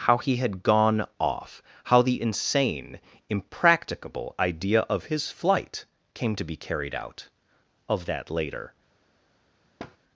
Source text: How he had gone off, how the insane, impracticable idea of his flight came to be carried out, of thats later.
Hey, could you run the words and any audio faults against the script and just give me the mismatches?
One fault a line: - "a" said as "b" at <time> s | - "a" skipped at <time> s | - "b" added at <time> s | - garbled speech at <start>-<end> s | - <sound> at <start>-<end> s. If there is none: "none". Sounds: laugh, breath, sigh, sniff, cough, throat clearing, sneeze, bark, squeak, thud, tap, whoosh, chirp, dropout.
- "thats" said as "that" at 8.0 s
- thud at 9.8-10.0 s